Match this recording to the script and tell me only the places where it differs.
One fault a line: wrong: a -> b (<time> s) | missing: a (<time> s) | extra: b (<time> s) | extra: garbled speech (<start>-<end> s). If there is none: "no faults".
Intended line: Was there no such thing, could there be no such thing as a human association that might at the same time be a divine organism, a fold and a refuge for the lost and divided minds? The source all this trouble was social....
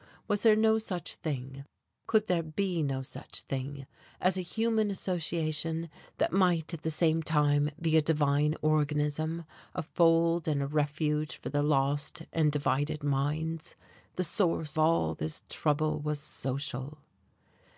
no faults